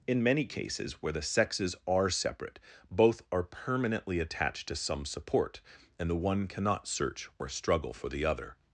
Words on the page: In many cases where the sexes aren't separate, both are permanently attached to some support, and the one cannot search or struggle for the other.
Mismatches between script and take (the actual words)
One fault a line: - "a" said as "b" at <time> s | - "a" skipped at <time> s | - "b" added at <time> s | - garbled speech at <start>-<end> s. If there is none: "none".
- "aren't" said as "are" at 1.9 s